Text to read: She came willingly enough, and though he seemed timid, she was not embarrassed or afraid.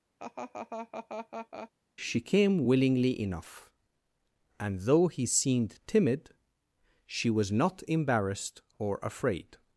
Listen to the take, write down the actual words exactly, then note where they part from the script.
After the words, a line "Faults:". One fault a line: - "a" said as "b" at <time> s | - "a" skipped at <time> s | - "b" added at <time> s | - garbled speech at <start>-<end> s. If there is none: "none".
She came willingly enough, and though he seemed timid, she was not embarrassed or afraid.
Faults:
none